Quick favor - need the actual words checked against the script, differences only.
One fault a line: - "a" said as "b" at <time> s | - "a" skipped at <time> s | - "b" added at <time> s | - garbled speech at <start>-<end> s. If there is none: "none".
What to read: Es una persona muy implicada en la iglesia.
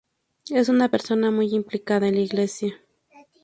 none